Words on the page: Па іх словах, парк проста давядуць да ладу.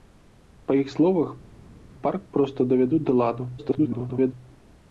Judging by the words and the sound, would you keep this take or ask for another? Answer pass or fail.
fail